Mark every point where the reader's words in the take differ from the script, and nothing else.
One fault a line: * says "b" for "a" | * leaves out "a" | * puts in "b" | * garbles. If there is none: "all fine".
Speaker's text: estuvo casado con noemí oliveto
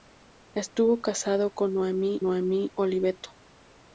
* puts in "noemí"